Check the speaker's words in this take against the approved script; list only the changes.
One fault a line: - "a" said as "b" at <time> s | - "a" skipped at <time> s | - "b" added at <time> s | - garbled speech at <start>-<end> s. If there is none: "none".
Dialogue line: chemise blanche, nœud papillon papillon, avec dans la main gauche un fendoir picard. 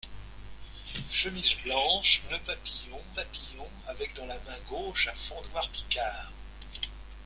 none